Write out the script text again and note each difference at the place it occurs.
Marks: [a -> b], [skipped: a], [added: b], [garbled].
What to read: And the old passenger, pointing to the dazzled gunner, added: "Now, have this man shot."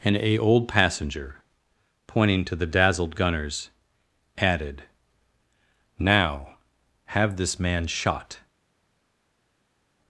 And [the -> a] old passenger, pointing to the dazzled [gunner, -> gunners] added: "Now, have this man shot."